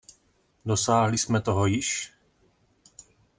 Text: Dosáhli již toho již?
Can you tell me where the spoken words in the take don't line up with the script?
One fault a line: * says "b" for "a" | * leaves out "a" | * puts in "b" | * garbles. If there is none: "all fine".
* says "jsme" for "již"